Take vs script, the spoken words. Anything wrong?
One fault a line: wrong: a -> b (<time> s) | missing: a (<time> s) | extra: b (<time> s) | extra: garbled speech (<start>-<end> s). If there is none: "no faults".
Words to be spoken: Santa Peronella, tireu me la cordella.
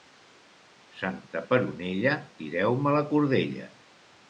no faults